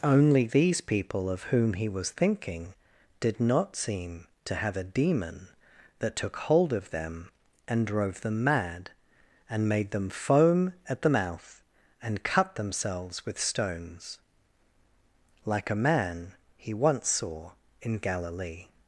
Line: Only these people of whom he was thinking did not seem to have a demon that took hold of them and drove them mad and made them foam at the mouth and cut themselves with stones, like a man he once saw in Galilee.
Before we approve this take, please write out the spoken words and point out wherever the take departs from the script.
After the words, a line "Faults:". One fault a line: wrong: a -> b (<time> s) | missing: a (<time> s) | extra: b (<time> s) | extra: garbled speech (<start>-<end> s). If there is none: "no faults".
Only these people of whom he was thinking did not seem to have a demon that took hold of them and drove them mad and made them foam at the mouth and cut themselves with stones, like a man he once saw in Galilee.
Faults:
no faults